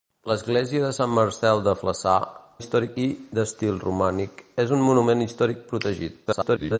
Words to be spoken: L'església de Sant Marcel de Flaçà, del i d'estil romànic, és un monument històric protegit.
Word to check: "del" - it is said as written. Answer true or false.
false